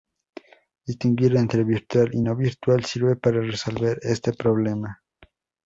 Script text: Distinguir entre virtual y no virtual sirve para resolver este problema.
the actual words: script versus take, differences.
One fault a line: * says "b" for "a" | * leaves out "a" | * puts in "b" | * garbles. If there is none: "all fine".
all fine